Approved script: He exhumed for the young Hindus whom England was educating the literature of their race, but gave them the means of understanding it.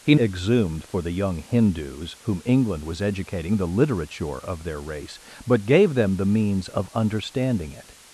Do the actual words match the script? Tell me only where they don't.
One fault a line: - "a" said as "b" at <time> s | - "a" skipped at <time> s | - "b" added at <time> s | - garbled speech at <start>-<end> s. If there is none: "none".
none